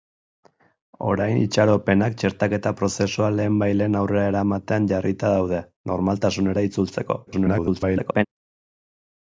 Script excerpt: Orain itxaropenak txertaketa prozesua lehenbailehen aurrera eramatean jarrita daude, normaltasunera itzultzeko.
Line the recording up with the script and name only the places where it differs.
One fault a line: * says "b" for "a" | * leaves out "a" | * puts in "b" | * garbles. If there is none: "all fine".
* garbles